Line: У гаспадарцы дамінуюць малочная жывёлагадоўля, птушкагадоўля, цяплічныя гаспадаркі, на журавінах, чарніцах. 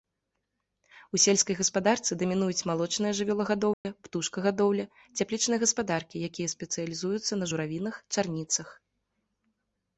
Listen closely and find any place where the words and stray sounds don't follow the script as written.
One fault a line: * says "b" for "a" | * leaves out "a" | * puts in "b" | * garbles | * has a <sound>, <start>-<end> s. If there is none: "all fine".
* puts in "сельскай"
* has a dropout, 3.7-3.8 s
* puts in "якія спецыялізуюцца"